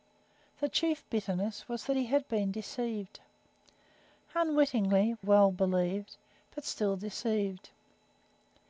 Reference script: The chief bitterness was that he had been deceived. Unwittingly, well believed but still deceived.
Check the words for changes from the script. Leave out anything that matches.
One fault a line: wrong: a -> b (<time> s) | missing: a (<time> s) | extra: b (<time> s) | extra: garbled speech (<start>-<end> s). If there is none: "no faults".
no faults